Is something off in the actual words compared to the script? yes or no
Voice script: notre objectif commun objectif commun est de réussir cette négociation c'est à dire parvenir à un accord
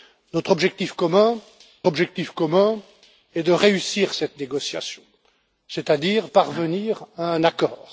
no